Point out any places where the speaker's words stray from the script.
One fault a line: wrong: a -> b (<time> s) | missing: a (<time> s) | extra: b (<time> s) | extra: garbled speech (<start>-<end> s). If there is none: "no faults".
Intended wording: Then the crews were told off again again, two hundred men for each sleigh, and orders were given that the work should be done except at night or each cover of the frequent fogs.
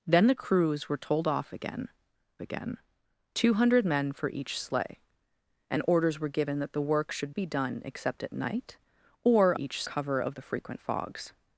no faults